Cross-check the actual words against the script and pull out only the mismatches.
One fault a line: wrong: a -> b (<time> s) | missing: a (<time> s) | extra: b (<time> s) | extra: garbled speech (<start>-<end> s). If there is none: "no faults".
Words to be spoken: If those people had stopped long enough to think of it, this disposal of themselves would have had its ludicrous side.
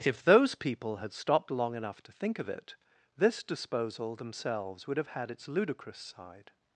missing: of (4.2 s)